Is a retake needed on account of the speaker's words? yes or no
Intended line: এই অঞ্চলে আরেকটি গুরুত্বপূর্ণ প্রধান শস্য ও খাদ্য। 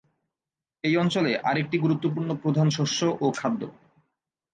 no